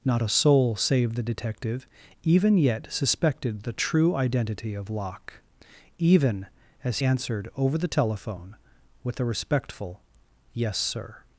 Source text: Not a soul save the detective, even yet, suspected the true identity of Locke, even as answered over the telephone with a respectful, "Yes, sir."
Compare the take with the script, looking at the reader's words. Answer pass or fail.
pass